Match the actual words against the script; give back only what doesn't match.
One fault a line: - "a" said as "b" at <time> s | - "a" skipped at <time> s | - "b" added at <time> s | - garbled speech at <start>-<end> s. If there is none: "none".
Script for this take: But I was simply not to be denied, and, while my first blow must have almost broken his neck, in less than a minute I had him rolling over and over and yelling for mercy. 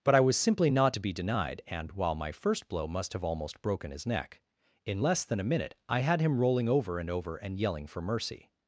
none